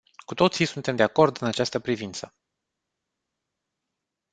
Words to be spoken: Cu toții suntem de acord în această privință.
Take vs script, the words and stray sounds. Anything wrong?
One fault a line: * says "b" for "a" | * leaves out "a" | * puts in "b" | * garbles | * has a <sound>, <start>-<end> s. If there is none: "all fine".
all fine